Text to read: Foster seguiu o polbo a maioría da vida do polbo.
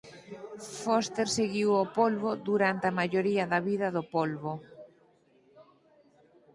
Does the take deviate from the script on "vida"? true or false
false